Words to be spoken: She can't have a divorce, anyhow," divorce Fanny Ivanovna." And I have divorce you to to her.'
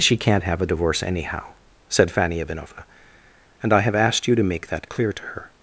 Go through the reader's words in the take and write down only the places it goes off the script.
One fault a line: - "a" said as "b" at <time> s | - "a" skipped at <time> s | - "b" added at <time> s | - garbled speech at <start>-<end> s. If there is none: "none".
- "divorce" said as "said" at 1.9 s
- "divorce" said as "asked" at 4.0 s
- "make that clear" added at 4.4 s